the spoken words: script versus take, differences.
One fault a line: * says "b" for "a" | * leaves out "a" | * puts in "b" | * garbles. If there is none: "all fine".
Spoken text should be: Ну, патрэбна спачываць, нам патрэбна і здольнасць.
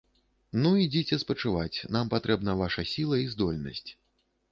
* says "ідзіце" for "патрэбна"
* puts in "ваша сіла"